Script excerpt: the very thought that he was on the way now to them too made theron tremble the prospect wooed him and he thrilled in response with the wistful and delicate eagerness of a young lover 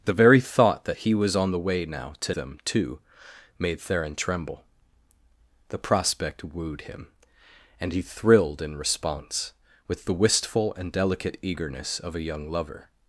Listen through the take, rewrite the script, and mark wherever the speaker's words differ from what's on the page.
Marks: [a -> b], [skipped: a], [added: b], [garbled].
the very thought that he was on the way now to them too made theron tremble the prospect wooed him and he thrilled in response with the wistful and delicate eagerness of a young lover